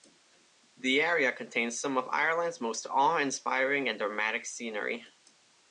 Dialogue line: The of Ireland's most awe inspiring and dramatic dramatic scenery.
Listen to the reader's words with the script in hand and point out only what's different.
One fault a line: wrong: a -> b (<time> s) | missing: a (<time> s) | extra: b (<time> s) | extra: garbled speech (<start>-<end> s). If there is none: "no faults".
extra: area contains some (1.0 s)
missing: dramatic (4.5 s)